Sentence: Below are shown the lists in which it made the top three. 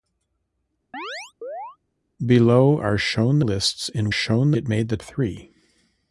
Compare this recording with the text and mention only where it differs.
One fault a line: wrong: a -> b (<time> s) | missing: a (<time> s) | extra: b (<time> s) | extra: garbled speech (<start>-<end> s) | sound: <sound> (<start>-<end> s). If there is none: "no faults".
sound: chirp (0.9-1.8 s)
missing: the (3.4 s)
wrong: which -> shown (4.1 s)
missing: top (5.0 s)